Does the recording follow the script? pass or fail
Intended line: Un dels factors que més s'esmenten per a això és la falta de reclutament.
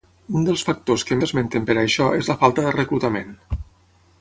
fail